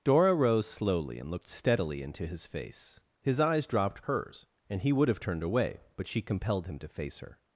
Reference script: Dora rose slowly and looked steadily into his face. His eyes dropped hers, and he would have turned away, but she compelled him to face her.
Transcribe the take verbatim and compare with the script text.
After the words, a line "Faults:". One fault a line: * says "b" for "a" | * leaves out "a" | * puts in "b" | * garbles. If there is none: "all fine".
Dora rose slowly and looked steadily into his face. His eyes dropped hers, and he would have turned away, but she compelled him to face her.
Faults:
all fine